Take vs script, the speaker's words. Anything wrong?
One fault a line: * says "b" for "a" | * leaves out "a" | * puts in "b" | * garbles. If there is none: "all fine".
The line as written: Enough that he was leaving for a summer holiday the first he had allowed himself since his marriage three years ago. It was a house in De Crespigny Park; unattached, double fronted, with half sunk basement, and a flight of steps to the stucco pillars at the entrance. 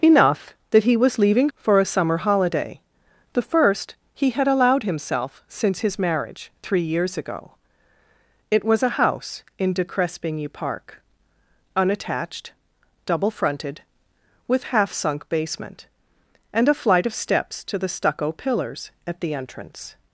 all fine